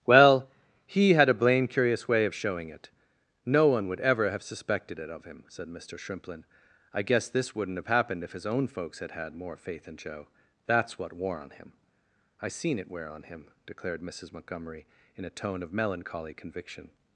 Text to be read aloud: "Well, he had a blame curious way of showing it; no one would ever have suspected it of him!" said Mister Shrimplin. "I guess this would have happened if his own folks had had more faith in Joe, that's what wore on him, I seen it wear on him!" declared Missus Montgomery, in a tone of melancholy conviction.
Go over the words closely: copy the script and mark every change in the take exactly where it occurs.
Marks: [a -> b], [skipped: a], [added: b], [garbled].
"Well, he had a blame curious way of showing it; no one would ever have suspected it of him!" said Mister Shrimplin. "I guess this [would -> wouldn't] have happened if his own folks had had more faith in Joe, that's what wore on him, I seen it wear on him!" declared Missus Montgomery, in a tone of melancholy conviction.